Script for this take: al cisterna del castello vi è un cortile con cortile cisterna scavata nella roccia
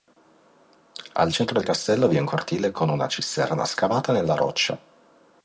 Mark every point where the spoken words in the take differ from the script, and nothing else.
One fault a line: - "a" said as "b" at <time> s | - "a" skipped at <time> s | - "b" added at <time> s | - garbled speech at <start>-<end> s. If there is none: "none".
- "cisterna" said as "centro" at 1.3 s
- "cortile" said as "una" at 2.9 s